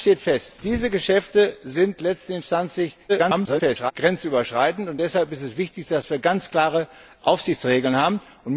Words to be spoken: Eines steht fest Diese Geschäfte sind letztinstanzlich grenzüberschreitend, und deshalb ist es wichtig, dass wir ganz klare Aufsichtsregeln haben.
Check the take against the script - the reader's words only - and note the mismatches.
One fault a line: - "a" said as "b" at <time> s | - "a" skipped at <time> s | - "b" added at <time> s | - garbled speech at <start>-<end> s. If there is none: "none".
- garbled speech at 3.1-3.9 s